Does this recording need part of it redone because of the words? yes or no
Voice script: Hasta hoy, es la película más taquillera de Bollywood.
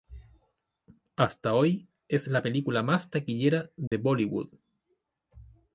no